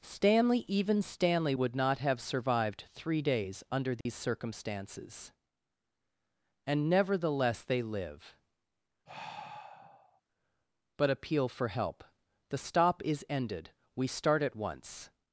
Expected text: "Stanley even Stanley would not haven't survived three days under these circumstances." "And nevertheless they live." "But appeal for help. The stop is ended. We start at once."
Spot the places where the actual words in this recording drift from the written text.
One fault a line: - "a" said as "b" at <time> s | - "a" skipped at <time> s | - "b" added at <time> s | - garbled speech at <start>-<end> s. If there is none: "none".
- "haven't" said as "have" at 2.0 s